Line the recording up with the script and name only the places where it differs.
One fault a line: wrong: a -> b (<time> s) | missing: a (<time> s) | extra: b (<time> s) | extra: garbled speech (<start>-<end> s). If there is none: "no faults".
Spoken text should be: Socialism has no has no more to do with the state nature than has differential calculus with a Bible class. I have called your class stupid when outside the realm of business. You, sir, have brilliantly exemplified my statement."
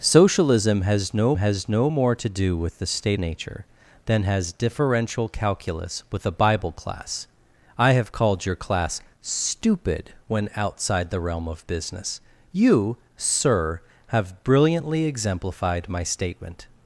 no faults